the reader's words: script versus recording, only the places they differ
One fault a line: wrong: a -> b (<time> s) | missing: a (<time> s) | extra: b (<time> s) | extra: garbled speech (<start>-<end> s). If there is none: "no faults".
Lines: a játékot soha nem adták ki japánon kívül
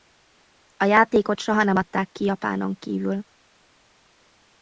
no faults